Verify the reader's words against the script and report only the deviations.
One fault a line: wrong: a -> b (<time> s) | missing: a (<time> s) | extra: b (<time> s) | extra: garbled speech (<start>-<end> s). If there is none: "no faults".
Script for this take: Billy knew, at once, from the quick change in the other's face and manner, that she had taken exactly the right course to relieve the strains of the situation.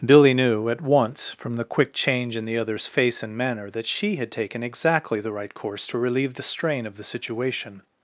wrong: strains -> strain (6.4 s)